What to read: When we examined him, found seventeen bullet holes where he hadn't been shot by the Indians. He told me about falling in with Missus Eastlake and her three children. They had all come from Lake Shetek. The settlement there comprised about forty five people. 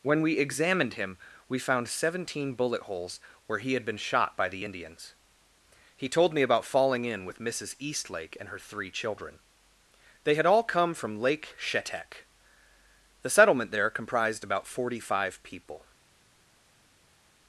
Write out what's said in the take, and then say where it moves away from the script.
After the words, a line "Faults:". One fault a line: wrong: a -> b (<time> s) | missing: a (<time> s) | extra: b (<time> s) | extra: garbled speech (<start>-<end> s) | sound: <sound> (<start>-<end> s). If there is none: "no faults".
When we examined him, we found seventeen bullet holes where he had been shot by the Indians. He told me about falling in with Missus Eastlake and her three children. They had all come from Lake Shetek. The settlement there comprised about forty five people.
Faults:
extra: we (1.5 s)
wrong: hadn't -> had (3.7 s)